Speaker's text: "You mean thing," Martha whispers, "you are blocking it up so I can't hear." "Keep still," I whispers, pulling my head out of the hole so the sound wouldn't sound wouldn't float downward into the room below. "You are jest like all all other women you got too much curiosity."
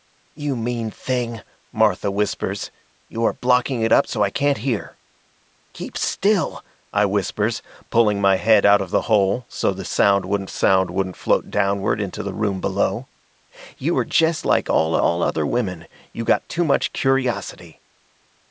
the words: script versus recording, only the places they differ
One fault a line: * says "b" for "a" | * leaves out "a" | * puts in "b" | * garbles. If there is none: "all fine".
all fine